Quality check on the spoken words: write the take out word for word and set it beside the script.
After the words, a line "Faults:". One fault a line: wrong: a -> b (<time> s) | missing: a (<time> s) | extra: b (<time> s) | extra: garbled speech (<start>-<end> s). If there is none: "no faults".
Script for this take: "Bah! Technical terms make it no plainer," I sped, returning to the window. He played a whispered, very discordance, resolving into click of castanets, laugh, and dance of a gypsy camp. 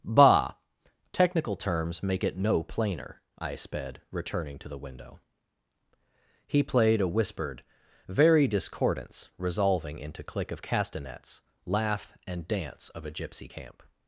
"Bah! Technical terms make it no plainer," I sped, returning to the window. He played a whispered, very discordance, resolving into click of castanets, laugh, and dance of a gypsy camp.
Faults:
no faults